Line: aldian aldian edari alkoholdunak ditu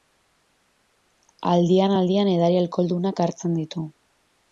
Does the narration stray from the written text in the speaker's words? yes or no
yes